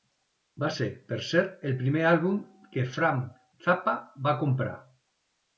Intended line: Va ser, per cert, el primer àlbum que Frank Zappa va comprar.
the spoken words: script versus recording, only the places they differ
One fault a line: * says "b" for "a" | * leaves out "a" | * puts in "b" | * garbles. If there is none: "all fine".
all fine